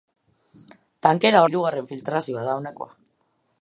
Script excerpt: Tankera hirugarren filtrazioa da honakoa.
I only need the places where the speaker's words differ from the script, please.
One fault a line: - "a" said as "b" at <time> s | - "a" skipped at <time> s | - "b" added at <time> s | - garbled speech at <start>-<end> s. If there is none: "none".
none